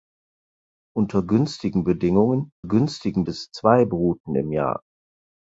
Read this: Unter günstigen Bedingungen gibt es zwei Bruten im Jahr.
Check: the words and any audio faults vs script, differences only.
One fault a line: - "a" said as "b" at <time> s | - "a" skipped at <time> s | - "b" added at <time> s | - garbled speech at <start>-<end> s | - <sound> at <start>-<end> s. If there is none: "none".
- "gibt" said as "günstigen" at 2.6 s